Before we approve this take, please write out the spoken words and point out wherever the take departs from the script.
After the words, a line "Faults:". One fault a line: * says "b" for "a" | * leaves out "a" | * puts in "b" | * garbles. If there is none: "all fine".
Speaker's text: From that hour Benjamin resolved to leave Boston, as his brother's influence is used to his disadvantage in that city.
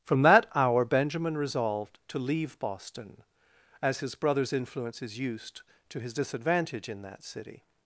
From that hour Benjamin resolved to leave Boston, as his brother's influence is used to his disadvantage in that city.
Faults:
all fine